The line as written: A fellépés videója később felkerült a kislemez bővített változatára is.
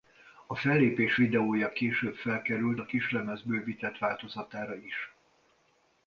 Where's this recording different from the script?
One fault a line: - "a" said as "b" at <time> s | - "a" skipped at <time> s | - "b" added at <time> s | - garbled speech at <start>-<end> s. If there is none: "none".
none